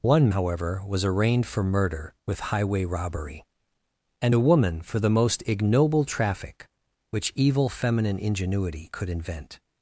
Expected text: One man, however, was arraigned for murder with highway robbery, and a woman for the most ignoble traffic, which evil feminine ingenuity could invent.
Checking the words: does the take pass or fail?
fail